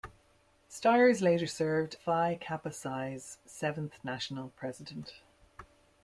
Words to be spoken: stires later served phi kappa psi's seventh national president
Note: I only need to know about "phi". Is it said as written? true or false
true